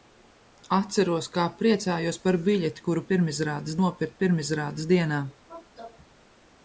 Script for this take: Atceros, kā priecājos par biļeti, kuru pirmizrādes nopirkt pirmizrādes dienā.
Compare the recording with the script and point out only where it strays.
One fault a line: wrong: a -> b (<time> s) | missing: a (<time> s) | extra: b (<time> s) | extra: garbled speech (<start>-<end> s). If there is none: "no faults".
no faults